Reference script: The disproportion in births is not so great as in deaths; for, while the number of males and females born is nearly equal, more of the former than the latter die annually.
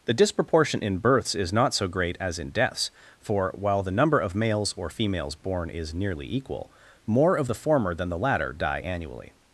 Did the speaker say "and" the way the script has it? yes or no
no